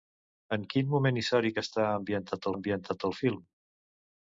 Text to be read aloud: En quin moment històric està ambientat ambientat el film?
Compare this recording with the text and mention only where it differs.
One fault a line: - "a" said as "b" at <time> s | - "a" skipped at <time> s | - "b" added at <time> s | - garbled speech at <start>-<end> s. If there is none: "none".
none